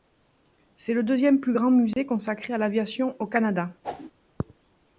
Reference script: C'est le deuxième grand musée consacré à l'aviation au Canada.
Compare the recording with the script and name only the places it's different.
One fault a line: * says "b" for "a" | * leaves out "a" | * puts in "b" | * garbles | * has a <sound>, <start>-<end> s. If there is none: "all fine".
* puts in "plus"
* has a dropout, 1.9-2.0 s
* has a whoosh, 3.8-4.1 s